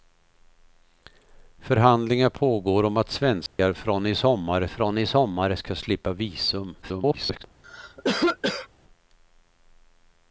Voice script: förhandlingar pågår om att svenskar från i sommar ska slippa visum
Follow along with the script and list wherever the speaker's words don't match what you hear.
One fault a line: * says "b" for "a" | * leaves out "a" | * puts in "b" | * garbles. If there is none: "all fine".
* puts in "från i sommar"
* garbles